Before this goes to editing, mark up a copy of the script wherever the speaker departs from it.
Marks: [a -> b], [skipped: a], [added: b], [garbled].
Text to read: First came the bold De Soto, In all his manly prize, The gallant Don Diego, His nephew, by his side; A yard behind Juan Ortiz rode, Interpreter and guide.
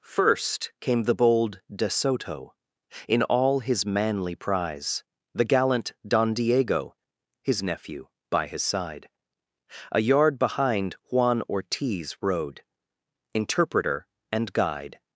First came the bold De Soto, In all his manly prize, The gallant Don Diego, His nephew, by his side; A yard behind Juan Ortiz rode, Interpreter and guide.